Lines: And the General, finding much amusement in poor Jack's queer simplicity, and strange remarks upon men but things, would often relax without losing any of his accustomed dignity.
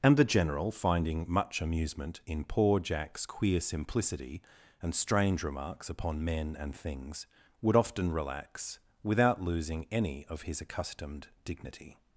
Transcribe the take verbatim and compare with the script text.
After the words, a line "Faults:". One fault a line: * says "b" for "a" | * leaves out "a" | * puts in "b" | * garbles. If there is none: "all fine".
And the General, finding much amusement in poor Jack's queer simplicity, and strange remarks upon men and things, would often relax without losing any of his accustomed dignity.
Faults:
* says "and" for "but"